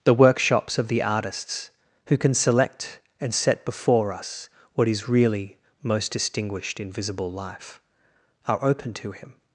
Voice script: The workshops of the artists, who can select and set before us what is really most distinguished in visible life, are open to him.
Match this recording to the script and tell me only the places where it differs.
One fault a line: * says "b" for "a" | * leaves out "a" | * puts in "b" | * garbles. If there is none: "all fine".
all fine